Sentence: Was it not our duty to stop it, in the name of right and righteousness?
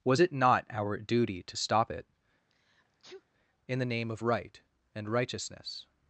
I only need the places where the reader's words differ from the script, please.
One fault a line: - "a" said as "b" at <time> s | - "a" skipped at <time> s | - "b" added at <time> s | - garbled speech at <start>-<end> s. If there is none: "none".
none